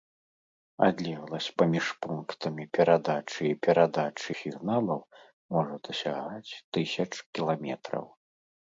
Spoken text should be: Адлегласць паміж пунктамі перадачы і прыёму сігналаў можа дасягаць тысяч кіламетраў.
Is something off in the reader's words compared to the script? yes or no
yes